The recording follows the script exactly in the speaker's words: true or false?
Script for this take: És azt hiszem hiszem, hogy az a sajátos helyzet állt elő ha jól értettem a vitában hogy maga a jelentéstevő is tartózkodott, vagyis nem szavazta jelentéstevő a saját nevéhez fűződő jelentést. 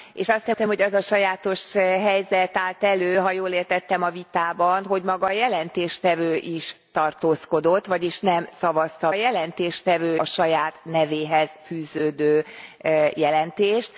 true